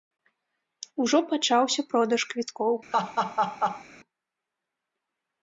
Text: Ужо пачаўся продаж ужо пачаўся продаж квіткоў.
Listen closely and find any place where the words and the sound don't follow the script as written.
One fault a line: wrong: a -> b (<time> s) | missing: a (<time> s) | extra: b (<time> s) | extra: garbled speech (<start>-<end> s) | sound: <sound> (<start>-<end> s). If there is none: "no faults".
missing: ужо пачаўся продаж (2.2 s)
sound: laugh (2.9-3.8 s)